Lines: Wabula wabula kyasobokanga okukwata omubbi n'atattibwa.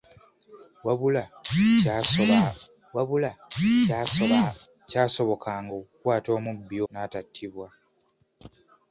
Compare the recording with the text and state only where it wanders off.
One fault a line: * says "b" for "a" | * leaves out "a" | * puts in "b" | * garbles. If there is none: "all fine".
all fine